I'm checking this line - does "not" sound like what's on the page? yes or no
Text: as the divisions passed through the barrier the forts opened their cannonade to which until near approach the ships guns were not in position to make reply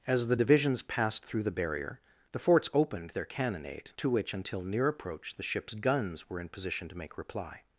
no